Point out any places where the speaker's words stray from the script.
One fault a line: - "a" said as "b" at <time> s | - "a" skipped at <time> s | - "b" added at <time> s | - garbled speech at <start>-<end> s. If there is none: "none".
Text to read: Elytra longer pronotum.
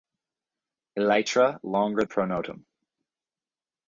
none